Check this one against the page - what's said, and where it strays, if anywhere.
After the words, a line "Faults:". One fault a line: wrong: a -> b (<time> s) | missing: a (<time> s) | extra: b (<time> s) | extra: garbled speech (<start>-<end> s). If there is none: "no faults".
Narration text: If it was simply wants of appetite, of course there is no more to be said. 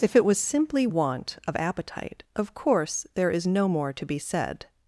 If it was simply want of appetite, of course there is no more to be said.
Faults:
wrong: wants -> want (0.8 s)